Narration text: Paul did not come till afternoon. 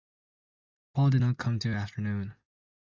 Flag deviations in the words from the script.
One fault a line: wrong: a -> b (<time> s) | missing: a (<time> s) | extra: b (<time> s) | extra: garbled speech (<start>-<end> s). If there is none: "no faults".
no faults